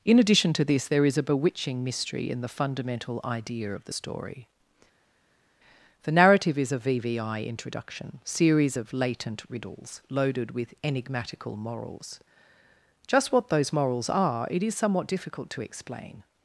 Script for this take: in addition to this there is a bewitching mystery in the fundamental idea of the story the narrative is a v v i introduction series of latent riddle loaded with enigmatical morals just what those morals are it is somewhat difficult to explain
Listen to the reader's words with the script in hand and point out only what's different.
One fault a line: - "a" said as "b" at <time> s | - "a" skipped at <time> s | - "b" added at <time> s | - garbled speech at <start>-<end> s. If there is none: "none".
- "riddle" said as "riddles" at 9.5 s